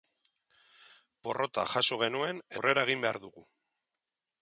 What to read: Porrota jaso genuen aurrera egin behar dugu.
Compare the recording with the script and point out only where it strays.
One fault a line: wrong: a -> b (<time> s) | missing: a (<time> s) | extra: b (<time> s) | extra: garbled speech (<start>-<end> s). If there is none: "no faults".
no faults